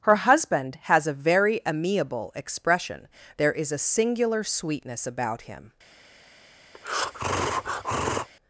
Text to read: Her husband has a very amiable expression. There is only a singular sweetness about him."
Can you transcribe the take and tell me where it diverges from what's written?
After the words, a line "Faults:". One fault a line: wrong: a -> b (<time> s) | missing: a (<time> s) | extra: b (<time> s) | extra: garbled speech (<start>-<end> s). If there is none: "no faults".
Her husband has a very amiable expression. There is a singular sweetness about him."
Faults:
missing: only (3.7 s)